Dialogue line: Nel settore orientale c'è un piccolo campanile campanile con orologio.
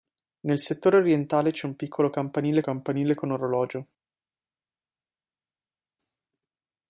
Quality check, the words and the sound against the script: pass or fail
pass